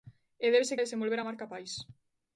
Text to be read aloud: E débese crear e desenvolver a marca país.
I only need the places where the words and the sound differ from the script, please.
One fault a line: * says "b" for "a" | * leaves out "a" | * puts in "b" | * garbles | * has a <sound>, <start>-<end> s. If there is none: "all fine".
* leaves out "crear"